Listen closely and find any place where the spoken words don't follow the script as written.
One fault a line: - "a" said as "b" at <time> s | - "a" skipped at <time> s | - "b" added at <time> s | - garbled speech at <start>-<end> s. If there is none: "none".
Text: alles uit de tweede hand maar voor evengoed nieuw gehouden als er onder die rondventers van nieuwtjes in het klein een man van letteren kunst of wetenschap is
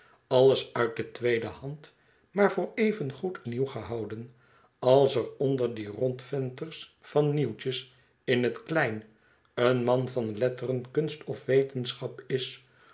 none